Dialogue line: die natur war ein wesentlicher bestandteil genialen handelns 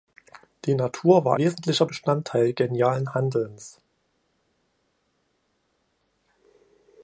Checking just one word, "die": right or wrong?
right